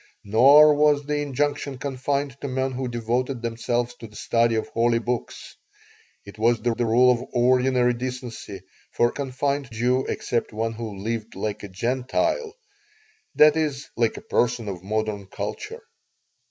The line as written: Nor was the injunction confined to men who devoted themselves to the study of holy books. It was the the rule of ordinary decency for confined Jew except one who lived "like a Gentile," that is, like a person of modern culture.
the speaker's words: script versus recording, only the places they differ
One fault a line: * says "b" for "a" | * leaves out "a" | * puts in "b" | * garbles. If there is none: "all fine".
all fine